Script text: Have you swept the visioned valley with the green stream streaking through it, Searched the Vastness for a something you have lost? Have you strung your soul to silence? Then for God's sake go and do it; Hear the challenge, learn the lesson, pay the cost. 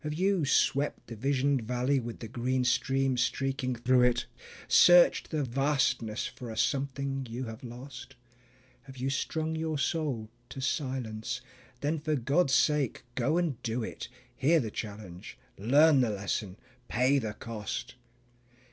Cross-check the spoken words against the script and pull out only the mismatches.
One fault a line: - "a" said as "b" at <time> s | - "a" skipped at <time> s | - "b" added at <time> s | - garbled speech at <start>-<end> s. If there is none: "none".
none